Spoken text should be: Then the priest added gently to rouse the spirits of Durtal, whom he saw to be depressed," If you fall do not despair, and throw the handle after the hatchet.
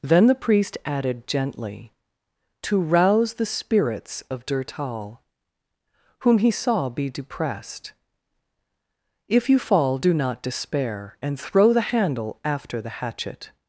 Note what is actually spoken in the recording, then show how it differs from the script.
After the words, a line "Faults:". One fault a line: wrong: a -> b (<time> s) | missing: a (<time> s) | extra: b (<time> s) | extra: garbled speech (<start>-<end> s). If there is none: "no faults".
Then the priest added gently to rouse the spirits of Durtal, whom he saw be depressed," If you fall do not despair, and throw the handle after the hatchet.
Faults:
missing: to (6.9 s)